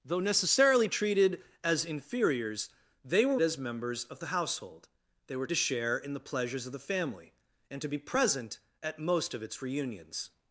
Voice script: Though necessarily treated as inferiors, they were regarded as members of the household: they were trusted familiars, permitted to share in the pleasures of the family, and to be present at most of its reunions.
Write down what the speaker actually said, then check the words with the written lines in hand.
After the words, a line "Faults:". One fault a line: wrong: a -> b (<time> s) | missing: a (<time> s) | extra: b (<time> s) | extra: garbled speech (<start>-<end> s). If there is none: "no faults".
Though necessarily treated as inferiors, they were as members of the household: they were to share in the pleasures of the family, and to be present at most of its reunions.
Faults:
missing: regarded (3.4 s)
missing: trusted familiars permitted (5.5 s)